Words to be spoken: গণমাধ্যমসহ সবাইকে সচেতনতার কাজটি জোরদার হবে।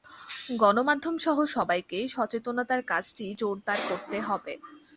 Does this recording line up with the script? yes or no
no